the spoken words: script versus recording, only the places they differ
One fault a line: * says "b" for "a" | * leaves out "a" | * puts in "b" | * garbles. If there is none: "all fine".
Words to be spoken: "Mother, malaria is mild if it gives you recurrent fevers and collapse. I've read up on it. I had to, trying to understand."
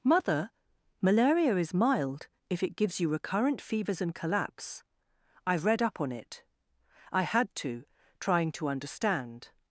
all fine